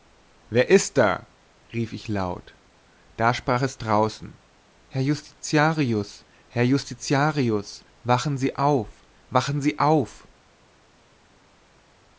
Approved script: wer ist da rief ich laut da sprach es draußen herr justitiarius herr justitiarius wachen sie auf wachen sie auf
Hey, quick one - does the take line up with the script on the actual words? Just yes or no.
yes